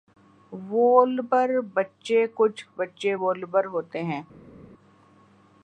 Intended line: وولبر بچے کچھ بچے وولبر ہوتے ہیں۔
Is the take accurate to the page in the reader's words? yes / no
yes